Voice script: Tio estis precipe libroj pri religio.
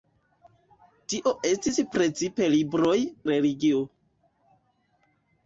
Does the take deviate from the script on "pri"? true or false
true